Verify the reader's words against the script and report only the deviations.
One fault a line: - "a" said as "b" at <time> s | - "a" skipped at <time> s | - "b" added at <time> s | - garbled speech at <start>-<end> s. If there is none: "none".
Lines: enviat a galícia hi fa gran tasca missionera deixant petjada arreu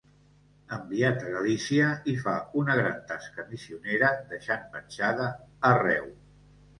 - "una" added at 2.6 s